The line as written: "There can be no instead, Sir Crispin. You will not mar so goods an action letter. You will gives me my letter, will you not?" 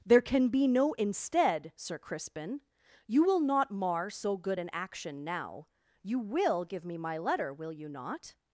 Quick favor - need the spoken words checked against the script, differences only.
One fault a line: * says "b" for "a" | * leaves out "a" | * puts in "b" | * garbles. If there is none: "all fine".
* says "good" for "goods"
* says "now" for "letter"
* says "give" for "gives"